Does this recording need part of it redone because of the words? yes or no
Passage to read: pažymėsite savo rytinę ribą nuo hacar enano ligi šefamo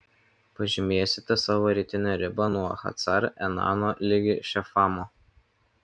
no